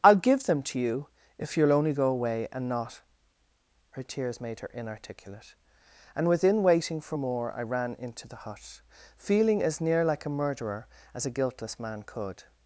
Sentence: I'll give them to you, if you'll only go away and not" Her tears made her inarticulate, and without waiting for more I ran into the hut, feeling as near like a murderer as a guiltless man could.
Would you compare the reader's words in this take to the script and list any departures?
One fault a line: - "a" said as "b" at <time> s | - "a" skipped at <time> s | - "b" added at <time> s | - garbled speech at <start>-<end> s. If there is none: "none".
- "without" said as "within" at 6.3 s